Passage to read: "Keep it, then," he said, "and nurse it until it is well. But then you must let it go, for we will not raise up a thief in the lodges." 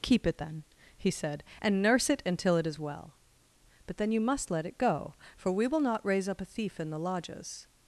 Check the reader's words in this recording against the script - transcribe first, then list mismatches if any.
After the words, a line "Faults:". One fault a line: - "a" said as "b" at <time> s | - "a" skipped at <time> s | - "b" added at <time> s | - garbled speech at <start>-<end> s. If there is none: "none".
"Keep it, then," he said, "and nurse it until it is well. But then you must let it go, for we will not raise up a thief in the lodges."
Faults:
none